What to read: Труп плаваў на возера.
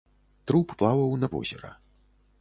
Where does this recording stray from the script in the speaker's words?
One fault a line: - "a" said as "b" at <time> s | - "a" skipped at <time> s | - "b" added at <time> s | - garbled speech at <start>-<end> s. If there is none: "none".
none